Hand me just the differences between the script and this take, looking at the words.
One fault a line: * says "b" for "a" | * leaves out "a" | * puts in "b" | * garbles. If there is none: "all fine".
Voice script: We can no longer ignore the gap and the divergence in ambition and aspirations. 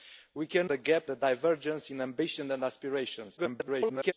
* leaves out "no longer ignore"
* leaves out "and"
* garbles